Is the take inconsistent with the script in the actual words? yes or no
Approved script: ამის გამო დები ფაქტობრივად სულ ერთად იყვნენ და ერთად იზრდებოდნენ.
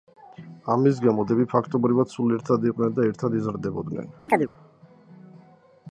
no